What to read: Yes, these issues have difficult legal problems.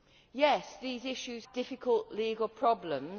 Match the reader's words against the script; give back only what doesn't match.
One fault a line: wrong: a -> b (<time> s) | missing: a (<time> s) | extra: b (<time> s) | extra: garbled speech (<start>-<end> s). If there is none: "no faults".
missing: have (1.4 s)